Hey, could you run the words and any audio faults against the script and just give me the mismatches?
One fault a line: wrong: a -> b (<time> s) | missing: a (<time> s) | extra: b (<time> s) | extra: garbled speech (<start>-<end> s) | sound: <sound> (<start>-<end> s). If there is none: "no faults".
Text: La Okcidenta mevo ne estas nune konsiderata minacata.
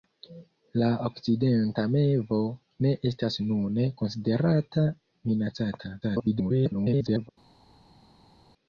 extra: garbled speech (6.0-7.3 s)